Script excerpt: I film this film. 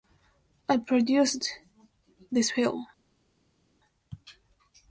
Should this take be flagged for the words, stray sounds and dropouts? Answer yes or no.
yes